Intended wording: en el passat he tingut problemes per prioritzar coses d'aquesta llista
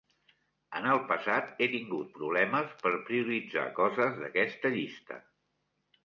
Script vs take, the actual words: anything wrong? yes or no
no